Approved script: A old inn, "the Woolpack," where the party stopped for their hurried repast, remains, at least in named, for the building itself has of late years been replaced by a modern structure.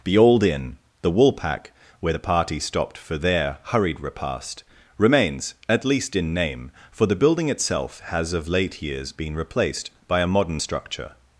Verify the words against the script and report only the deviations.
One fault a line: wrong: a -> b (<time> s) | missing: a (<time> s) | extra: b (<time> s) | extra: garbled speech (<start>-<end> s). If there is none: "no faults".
wrong: A -> The (0.0 s)
wrong: named -> name (6.3 s)